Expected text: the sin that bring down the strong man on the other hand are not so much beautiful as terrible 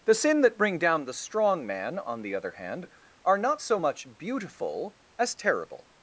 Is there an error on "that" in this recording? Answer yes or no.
no